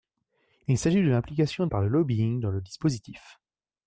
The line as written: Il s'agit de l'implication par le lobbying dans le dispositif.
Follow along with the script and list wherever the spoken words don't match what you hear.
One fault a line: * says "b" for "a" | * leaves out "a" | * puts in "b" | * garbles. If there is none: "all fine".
all fine